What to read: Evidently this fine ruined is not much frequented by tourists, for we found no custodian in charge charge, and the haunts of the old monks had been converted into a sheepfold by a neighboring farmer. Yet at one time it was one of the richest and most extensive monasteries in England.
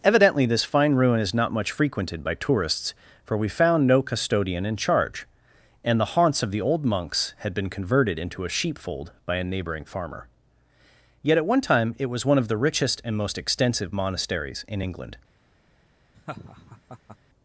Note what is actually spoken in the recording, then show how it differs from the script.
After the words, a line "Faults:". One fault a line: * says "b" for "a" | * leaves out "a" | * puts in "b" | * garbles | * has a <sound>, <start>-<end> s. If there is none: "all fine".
Evidently this fine ruin is not much frequented by tourists, for we found no custodian in charge, and the haunts of the old monks had been converted into a sheepfold by a neighboring farmer. Yet at one time it was one of the richest and most extensive monasteries in England.
Faults:
* says "ruin" for "ruined"
* leaves out "charge"
* has a laugh, 16.1-17.2 s